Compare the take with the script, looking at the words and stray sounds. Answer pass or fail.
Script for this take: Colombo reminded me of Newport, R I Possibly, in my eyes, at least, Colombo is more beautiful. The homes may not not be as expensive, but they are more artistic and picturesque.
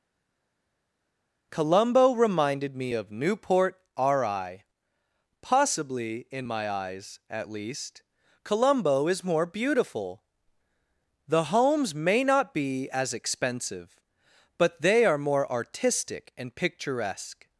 fail